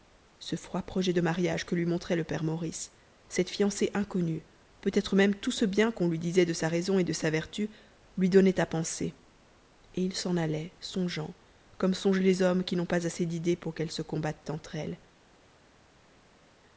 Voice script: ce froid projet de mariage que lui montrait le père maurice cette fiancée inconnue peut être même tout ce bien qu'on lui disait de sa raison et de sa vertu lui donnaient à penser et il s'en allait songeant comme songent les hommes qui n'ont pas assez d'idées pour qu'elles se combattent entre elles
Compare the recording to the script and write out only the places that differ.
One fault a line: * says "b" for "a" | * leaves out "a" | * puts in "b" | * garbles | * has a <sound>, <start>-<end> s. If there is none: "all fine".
all fine